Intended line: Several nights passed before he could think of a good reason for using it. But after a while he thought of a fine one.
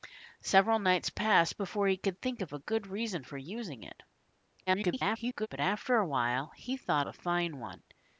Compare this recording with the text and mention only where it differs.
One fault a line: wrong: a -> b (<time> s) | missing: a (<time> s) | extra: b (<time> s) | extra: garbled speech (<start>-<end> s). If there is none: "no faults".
extra: garbled speech (4.7-5.5 s)
missing: of (7.1 s)